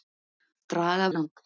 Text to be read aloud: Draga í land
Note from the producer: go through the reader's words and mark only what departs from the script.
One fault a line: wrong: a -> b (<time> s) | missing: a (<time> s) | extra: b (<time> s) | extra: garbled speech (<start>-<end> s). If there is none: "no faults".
no faults